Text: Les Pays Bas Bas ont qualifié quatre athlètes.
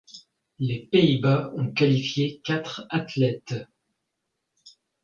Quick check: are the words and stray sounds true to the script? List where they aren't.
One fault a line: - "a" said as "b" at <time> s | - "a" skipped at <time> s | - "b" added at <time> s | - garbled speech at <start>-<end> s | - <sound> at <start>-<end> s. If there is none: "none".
- "Bas" skipped at 1.5 s